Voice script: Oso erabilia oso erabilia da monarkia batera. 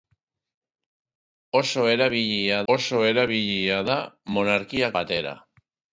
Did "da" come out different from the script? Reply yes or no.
no